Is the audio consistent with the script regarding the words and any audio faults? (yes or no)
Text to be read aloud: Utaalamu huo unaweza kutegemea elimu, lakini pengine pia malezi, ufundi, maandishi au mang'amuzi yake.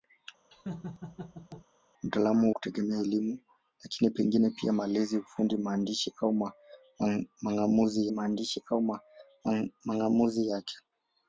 no